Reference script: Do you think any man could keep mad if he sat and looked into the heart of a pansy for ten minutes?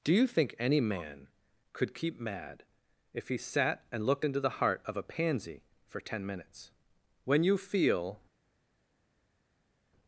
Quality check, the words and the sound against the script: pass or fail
fail